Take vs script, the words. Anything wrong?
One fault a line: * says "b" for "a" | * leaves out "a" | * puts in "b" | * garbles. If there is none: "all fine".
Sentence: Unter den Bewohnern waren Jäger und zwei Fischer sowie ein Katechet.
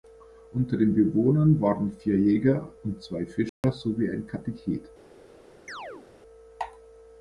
* puts in "vier"